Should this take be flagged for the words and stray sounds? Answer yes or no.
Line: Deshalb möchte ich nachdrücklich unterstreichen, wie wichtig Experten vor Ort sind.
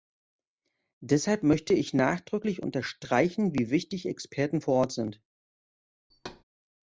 yes